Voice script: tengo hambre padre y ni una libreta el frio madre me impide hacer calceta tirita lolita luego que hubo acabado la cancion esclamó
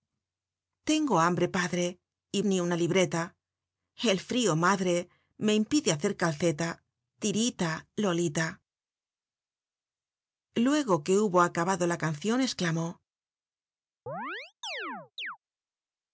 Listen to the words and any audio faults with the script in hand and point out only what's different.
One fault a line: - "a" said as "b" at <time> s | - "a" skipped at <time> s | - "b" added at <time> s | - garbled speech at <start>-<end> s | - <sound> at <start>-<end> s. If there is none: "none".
- chirp at 14.1-15.4 s